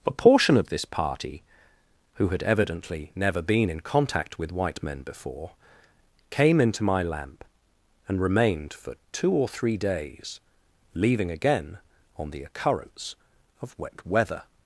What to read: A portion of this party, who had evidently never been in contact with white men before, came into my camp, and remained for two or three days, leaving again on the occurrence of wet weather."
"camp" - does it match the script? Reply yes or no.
no